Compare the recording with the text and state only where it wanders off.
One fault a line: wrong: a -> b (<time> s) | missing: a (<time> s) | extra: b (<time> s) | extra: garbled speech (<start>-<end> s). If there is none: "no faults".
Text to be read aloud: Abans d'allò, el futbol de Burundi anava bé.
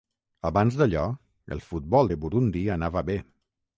no faults